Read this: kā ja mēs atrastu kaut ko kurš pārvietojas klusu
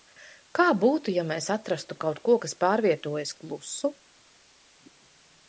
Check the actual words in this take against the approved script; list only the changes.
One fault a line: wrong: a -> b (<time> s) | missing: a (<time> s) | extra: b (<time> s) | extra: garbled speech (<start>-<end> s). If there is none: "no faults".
extra: būtu (0.8 s)
wrong: kurš -> kas (2.4 s)